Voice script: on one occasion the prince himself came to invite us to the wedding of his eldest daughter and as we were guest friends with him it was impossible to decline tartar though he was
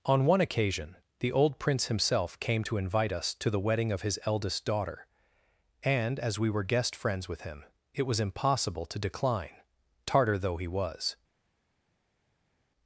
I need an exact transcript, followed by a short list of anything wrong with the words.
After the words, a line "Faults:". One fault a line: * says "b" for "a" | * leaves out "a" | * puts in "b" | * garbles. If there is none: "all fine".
on one occasion the old prince himself came to invite us to the wedding of his eldest daughter and as we were guest friends with him it was impossible to decline tartar though he was
Faults:
* puts in "old"